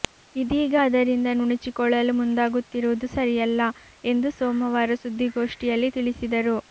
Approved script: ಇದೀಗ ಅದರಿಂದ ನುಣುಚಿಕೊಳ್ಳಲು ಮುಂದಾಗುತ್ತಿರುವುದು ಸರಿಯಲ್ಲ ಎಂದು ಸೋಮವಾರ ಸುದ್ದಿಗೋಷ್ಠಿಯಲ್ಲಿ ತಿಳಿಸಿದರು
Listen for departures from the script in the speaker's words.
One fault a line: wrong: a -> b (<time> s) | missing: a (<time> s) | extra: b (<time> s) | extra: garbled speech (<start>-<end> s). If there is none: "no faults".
no faults